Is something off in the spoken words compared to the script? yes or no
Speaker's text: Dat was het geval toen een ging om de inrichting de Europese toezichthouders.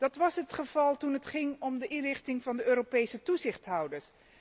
yes